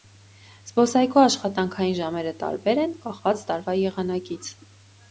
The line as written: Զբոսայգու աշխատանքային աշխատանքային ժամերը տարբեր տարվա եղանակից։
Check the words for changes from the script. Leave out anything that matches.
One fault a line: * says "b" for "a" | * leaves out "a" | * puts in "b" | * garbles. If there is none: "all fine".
* leaves out "աշխատանքային"
* puts in "են կախված"